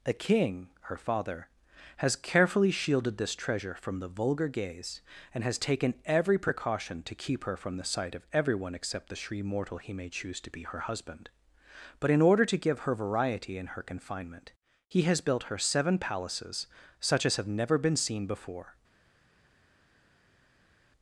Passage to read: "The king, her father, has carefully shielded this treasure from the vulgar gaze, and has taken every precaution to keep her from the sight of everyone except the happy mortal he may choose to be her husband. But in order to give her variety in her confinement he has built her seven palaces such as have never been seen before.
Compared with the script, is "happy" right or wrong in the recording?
wrong